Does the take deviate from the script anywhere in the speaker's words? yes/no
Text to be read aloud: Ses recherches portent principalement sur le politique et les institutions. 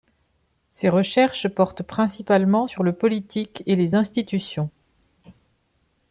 no